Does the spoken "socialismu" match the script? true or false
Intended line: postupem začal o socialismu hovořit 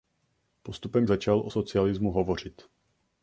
true